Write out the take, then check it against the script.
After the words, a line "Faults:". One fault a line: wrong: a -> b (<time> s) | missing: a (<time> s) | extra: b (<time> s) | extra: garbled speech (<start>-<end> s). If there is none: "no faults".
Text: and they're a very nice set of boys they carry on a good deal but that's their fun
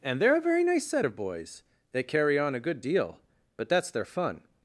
and they're a very nice set of boys they carry on a good deal but that's their fun
Faults:
no faults